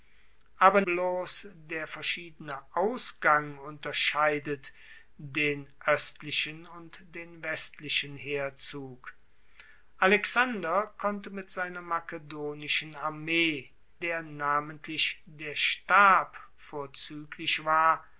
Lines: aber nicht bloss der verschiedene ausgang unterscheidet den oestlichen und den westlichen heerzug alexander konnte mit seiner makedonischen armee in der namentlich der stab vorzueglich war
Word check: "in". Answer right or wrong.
wrong